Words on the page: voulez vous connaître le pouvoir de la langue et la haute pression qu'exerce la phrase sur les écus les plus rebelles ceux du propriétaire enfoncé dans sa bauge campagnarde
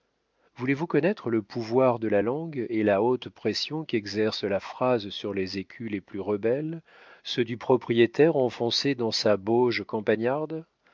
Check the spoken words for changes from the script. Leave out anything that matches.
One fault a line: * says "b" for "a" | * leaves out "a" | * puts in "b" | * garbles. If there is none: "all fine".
all fine